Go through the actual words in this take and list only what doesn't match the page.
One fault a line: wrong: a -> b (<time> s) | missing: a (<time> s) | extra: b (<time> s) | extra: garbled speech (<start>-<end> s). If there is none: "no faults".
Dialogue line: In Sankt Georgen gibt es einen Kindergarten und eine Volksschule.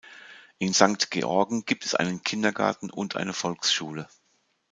no faults